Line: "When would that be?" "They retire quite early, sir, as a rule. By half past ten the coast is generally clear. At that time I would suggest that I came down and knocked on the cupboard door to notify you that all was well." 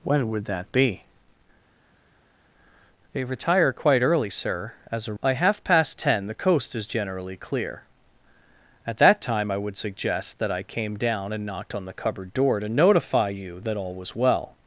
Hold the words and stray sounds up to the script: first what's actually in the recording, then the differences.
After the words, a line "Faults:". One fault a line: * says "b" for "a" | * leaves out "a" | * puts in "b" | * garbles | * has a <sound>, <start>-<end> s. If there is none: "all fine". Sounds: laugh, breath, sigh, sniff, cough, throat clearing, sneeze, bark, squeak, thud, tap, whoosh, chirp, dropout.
"When would that be?" "They retire quite early, sir, as a. By half past ten the coast is generally clear. At that time I would suggest that I came down and knocked on the cupboard door to notify you that all was well."
Faults:
* leaves out "rule"